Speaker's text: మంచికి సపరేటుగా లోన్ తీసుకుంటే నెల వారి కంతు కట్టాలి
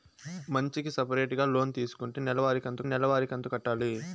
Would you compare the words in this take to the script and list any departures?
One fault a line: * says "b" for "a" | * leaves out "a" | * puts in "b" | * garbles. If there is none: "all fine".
* puts in "నెల వారి కంతు"